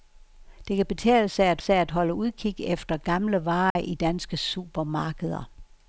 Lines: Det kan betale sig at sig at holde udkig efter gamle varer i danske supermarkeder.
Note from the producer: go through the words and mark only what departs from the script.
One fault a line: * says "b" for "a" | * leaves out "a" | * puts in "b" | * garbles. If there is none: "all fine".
all fine